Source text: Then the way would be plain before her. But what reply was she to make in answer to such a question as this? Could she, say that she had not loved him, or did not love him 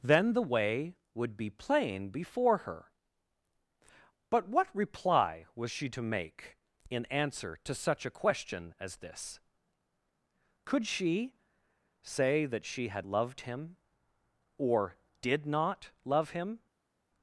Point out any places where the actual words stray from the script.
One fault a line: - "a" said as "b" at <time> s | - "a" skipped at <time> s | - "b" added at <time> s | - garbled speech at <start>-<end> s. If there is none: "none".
- "not" skipped at 13.1 s